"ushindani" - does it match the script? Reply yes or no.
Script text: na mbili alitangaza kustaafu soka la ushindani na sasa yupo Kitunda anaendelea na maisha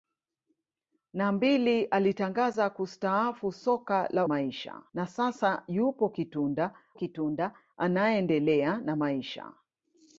no